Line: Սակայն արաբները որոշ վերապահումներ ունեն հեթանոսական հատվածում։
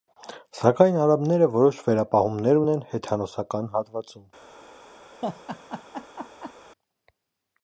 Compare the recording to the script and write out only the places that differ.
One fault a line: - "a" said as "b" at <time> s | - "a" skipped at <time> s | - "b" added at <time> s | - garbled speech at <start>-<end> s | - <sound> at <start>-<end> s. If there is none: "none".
- laugh at 5.2-6.5 s